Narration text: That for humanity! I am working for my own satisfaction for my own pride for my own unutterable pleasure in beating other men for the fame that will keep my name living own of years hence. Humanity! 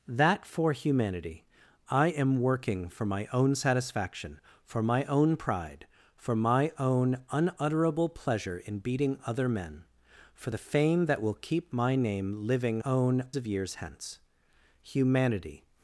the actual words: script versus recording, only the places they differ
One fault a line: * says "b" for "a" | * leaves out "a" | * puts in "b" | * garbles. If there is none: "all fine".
all fine